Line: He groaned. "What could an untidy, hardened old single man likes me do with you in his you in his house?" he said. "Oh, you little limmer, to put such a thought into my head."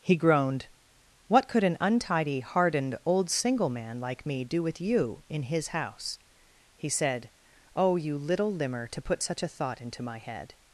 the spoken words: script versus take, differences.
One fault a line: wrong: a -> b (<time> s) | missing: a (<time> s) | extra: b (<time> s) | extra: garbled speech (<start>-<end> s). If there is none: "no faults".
wrong: likes -> like (4.0 s)
missing: you in his (5.7 s)